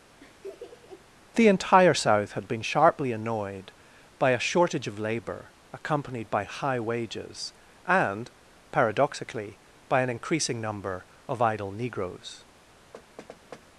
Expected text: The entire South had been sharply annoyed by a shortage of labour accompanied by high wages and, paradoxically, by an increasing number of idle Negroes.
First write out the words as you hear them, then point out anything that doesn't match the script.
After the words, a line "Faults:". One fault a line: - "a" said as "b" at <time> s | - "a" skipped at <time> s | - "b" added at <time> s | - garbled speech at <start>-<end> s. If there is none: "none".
The entire South had been sharply annoyed by a shortage of labour accompanied by high wages and, paradoxically, by an increasing number of idle Negroes.
Faults:
none